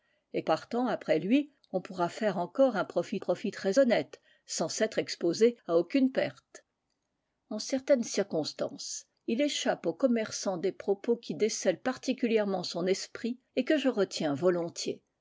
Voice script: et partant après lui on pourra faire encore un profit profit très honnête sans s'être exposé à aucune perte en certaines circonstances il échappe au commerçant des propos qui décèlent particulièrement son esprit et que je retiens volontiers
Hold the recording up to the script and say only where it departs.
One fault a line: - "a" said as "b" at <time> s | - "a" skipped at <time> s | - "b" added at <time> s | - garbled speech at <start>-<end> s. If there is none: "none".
none